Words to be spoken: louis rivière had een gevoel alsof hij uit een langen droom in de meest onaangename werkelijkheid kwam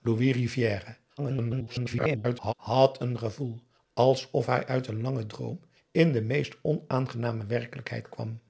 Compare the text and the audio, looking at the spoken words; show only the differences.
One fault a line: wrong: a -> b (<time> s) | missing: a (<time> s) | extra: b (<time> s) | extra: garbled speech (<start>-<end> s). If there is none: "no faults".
extra: garbled speech (1.2-2.5 s)